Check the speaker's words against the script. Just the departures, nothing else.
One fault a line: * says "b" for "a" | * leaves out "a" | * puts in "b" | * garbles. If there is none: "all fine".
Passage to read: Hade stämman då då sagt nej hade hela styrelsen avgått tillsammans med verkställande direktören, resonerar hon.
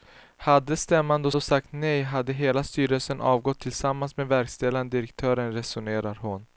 all fine